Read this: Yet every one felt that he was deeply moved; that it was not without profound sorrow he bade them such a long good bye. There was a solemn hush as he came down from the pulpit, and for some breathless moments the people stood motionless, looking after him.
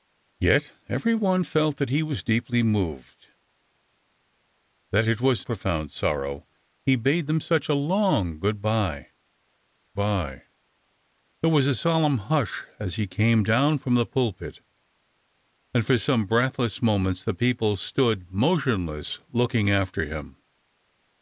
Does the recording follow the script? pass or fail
fail